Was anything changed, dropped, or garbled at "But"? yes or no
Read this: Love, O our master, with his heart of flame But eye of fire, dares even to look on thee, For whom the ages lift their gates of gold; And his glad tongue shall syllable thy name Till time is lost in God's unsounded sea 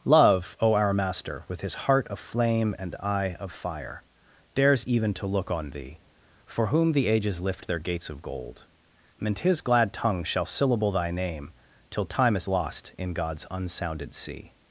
yes